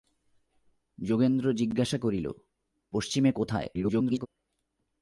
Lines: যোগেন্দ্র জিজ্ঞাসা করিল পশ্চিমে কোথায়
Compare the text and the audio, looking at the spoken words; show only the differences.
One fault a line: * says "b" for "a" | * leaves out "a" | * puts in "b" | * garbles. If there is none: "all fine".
* garbles